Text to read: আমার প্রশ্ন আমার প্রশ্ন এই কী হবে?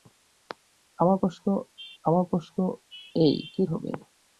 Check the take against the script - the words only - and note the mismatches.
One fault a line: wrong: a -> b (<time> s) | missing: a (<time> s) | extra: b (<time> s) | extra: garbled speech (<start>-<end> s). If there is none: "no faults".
no faults